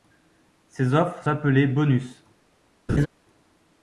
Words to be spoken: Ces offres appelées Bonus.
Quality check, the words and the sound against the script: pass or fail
fail